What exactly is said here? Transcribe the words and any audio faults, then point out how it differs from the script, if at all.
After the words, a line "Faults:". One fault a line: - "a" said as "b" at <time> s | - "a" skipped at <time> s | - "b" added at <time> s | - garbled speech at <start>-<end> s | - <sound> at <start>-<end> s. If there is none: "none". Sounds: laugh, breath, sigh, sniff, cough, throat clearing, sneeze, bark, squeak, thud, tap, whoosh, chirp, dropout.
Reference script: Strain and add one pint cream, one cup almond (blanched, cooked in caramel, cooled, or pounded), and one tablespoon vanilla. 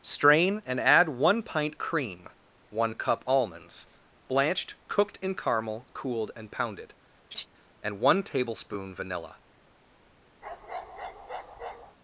Strain and add one pint cream, one cup almonds (blanched, cooked in caramel, cooled, and pounded), and one tablespoon vanilla.
Faults:
- "almond" said as "almonds" at 3.3 s
- "or" said as "and" at 6.4 s
- laugh at 7.3-7.5 s
- bark at 10.4-12.0 s